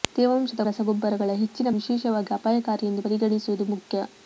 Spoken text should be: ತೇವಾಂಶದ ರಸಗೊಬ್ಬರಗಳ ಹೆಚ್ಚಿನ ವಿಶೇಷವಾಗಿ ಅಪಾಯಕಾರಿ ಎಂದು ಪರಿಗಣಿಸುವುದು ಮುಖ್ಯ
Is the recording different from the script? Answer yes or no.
no